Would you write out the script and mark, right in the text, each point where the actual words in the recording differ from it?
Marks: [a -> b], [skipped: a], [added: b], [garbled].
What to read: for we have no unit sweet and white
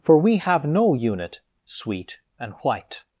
for we have no unit sweet and white